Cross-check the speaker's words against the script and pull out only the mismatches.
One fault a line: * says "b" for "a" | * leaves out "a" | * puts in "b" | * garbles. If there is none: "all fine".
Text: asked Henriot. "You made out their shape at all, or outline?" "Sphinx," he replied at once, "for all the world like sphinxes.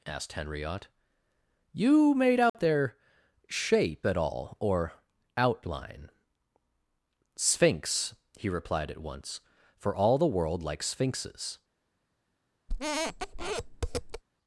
all fine